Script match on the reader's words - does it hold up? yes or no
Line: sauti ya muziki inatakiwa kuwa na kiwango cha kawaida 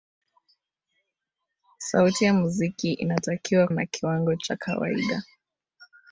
no